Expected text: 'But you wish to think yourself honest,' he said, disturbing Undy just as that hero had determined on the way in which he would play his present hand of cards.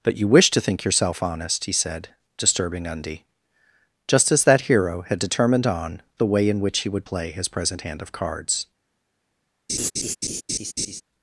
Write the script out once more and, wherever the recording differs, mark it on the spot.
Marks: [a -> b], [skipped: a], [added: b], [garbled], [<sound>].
'But you wish to think yourself honest,' he said, disturbing Undy just as that hero had determined on the way in which he would play his present hand of cards. [laugh]